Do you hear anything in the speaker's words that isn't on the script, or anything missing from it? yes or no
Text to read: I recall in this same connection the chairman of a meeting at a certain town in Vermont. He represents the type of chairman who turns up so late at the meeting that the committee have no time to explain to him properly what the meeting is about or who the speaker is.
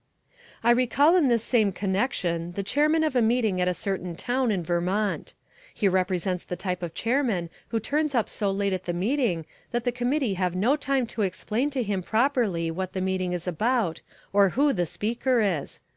no